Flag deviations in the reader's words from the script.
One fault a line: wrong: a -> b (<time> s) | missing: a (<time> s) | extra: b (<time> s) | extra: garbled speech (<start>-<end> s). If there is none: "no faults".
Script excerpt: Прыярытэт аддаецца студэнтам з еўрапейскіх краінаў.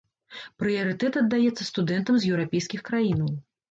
no faults